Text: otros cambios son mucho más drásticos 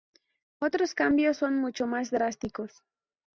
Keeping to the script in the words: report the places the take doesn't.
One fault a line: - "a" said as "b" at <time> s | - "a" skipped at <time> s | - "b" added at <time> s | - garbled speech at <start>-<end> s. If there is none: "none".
none